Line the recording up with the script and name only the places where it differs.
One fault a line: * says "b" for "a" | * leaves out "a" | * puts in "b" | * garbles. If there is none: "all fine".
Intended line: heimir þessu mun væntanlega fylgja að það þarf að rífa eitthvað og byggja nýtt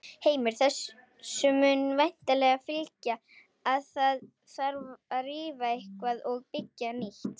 all fine